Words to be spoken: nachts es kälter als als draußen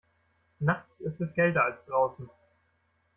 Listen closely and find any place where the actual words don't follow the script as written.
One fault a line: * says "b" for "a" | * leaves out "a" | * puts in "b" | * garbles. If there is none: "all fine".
* puts in "ist"
* leaves out "als"